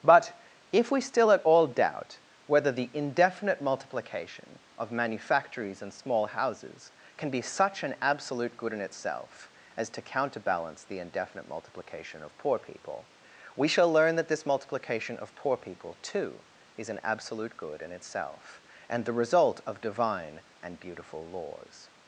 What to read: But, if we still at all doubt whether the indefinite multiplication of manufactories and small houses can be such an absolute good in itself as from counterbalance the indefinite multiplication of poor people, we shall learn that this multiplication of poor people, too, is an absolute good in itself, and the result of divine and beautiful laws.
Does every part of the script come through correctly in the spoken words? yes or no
no